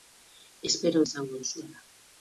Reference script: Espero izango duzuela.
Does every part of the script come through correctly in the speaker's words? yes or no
yes